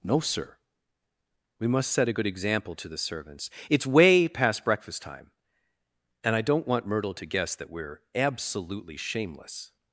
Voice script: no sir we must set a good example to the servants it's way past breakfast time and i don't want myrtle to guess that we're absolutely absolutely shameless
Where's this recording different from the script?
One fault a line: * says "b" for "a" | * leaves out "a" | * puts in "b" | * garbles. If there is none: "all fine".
* leaves out "absolutely"